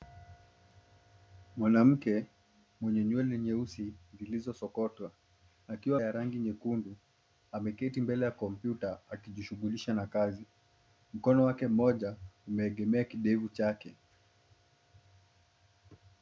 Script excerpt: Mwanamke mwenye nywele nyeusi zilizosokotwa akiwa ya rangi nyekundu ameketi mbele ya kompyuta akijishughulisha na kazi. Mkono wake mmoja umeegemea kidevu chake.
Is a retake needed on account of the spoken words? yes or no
no